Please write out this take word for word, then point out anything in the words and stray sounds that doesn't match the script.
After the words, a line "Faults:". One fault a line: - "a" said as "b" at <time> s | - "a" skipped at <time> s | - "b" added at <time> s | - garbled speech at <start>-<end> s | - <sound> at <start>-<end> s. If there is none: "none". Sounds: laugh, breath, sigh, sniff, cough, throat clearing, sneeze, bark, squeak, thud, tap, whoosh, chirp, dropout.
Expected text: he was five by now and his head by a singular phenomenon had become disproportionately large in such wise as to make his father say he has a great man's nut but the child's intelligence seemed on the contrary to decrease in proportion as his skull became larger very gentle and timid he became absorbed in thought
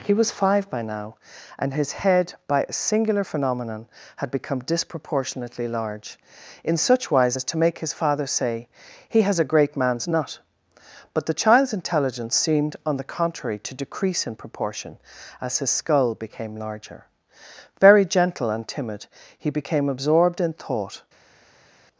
he was five by now and his head by a singular phenomenon had become disproportionately large in such wise as to make his father say he has a great man's nut but the child's intelligence seemed on the contrary to decrease in proportion as his skull became larger very gentle and timid he became absorbed in thought
Faults:
none